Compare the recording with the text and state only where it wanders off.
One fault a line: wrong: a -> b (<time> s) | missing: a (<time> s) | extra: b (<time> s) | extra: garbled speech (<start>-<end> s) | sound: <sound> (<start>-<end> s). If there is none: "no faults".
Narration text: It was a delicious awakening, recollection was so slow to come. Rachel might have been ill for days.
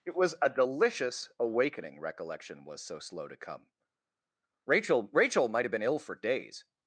extra: Rachel (5.1 s)